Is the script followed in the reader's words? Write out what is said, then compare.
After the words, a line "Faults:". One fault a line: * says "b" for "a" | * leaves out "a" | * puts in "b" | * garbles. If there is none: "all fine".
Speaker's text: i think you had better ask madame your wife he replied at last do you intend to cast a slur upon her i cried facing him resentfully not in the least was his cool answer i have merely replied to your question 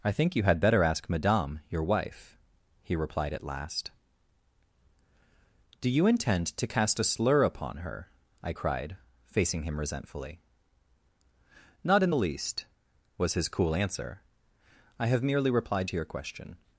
i think you had better ask madame your wife he replied at last do you intend to cast a slur upon her i cried facing him resentfully not in the least was his cool answer i have merely replied to your question
Faults:
all fine